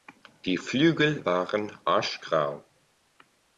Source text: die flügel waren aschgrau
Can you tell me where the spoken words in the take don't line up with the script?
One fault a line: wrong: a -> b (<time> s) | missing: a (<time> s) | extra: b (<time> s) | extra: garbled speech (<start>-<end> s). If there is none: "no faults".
no faults